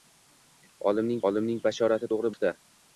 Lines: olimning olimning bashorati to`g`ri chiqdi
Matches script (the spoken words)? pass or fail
pass